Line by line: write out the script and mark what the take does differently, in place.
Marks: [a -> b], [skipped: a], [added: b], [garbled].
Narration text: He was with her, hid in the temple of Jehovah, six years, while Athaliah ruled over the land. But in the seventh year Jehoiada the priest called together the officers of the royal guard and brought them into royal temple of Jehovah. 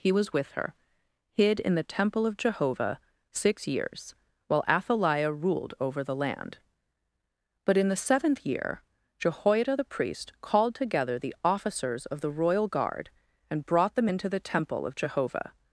He was with her, hid in the temple of Jehovah, six years, while Athaliah ruled over the land. But in the seventh year Jehoiada the priest called together the officers of the royal guard and brought them into [royal -> the] temple of Jehovah.